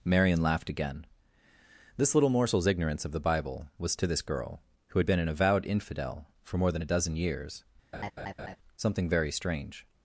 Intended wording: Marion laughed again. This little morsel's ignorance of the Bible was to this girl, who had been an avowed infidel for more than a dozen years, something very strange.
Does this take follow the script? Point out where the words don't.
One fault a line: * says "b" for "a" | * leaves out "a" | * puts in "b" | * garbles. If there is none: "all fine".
all fine